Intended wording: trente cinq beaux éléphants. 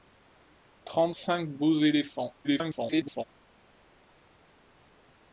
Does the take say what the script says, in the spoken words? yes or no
no